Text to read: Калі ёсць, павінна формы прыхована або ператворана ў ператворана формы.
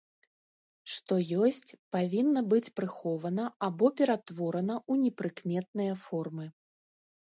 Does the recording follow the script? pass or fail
fail